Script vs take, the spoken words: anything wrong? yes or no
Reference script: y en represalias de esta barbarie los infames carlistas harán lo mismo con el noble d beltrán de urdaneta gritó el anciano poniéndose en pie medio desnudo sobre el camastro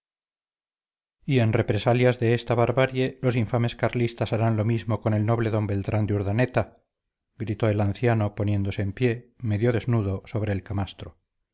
no